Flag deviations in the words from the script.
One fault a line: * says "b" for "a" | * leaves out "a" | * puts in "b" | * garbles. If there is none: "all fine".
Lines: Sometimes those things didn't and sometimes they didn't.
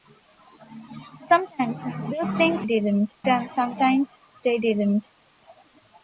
all fine